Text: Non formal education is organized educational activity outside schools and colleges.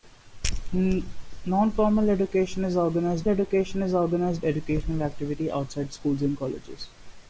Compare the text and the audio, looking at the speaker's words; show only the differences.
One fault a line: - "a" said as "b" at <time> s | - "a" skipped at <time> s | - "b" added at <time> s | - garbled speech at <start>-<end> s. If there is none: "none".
- "education is organized" added at 3.3 s